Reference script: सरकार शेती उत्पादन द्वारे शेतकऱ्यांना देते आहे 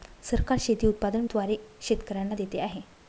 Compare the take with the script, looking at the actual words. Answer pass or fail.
pass